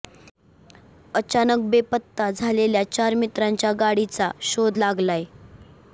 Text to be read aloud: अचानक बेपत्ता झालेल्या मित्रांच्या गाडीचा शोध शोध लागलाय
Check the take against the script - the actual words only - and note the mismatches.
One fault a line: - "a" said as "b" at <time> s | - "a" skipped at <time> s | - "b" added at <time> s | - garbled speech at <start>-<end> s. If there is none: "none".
- "चार" added at 2.9 s
- "शोध" skipped at 4.8 s